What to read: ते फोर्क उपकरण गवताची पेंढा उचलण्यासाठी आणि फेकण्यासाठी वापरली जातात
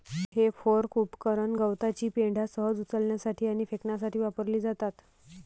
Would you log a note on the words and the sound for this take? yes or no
yes